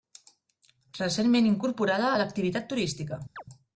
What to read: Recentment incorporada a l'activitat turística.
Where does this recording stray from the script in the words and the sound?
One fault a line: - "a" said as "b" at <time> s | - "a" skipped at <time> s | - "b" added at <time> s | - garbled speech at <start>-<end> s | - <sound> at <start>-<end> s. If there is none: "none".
- chirp at 3.4-3.4 s